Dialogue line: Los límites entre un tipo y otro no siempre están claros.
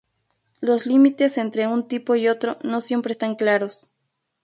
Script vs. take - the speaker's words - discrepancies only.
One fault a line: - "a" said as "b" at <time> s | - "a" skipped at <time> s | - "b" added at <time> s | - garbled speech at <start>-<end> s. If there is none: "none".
none